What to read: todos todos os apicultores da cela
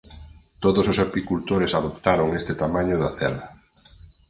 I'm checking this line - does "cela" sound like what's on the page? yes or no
yes